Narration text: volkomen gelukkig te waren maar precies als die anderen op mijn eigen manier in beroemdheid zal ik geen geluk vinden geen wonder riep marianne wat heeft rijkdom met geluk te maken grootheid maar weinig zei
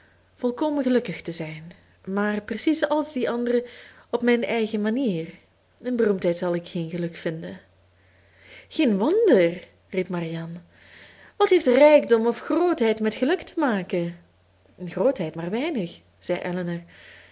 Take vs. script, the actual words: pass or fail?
fail